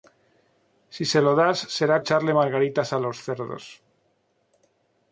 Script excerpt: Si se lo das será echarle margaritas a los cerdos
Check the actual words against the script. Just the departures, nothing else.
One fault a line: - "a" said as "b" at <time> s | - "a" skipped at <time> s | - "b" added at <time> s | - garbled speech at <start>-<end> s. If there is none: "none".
none